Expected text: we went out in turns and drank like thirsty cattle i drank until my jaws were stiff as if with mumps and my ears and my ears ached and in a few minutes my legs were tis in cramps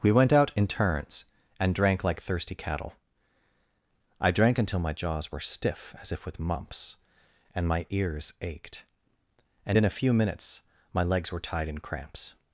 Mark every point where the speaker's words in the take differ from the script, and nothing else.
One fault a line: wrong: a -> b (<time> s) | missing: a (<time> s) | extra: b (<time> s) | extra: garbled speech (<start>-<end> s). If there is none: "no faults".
missing: and my ears (8.3 s)
wrong: tis -> tied (11.4 s)